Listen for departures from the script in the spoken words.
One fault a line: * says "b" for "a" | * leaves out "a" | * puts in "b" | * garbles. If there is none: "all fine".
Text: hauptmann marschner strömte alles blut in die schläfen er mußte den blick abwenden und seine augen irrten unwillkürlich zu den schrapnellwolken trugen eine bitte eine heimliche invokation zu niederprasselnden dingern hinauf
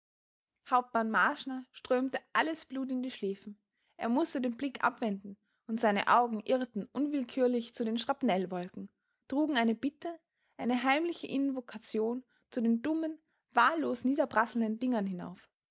* puts in "den dummen wahllos"